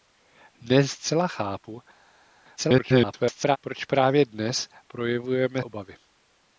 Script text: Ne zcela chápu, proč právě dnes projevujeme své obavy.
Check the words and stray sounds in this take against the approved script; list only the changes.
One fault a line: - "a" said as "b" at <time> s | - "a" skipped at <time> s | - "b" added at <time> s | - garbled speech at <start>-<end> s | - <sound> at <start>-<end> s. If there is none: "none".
- garbled speech at 2.6-3.6 s
- "své" skipped at 5.6 s